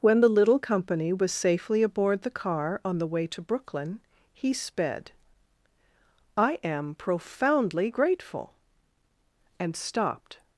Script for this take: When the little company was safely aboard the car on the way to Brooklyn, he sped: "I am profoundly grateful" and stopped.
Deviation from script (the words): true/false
false